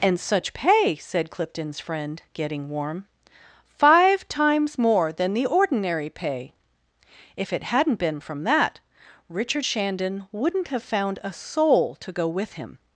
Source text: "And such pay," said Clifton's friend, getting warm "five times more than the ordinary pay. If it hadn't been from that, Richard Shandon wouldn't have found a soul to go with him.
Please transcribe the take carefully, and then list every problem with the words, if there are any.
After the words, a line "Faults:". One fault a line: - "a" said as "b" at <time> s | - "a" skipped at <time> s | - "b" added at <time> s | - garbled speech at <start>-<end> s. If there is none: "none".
"And such pay," said Clifton's friend, getting warm "five times more than the ordinary pay. If it hadn't been from that, Richard Shandon wouldn't have found a soul to go with him.
Faults:
none